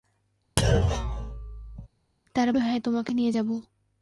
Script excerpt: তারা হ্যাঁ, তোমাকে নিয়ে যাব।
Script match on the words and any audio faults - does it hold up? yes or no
no